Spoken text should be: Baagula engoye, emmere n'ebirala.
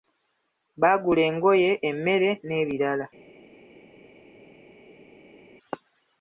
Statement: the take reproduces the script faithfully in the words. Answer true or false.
true